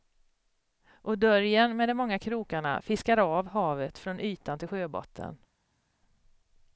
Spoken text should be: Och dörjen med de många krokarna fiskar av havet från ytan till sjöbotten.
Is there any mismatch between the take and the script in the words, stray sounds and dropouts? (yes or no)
no